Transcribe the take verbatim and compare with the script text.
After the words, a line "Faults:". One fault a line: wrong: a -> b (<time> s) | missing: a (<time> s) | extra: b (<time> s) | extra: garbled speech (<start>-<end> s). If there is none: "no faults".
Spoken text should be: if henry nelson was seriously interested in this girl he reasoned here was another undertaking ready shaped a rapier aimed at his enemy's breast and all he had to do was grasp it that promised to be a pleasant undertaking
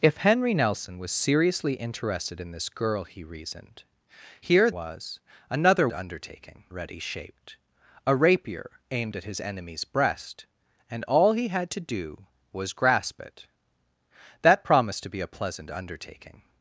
if henry nelson was seriously interested in this girl he reasoned here was another undertaking ready shaped a rapier aimed at his enemy's breast and all he had to do was grasp it that promised to be a pleasant undertaking
Faults:
no faults